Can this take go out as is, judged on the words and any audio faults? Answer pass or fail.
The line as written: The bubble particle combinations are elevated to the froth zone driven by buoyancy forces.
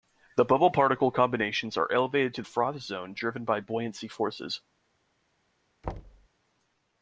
fail